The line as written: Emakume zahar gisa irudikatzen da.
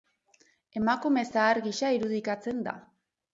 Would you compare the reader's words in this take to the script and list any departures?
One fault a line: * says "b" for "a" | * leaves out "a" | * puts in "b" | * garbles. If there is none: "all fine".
all fine